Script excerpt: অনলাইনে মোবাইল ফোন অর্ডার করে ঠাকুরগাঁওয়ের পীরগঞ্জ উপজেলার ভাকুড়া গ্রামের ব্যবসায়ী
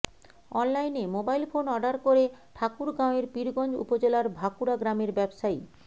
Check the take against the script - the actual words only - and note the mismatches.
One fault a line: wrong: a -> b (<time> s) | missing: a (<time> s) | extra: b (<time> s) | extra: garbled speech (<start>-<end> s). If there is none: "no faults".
no faults